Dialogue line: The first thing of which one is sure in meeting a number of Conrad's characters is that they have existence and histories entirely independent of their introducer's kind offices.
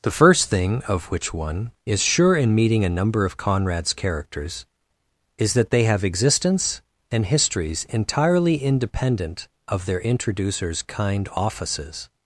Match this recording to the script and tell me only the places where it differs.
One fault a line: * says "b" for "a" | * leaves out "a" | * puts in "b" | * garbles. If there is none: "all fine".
all fine